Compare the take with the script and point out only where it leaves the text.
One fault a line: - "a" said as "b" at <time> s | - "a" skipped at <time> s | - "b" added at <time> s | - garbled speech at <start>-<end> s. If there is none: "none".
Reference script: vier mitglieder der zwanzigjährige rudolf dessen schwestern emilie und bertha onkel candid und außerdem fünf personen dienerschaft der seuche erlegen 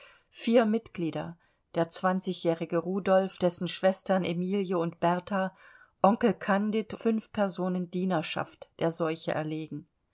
- "und außerdem" skipped at 6.9 s